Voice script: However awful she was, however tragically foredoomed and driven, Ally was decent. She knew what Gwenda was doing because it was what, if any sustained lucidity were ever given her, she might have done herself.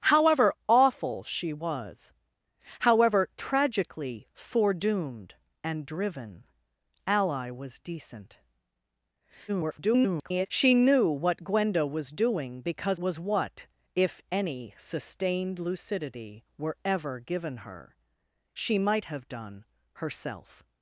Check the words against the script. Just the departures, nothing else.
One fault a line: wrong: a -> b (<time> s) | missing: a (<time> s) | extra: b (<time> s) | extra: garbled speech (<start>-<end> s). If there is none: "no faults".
extra: garbled speech (9.5-10.5 s)
missing: it (13.0 s)